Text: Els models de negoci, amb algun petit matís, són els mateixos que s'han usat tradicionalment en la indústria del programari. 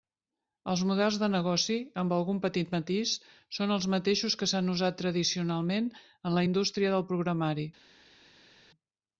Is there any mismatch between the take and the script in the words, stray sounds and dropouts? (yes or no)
no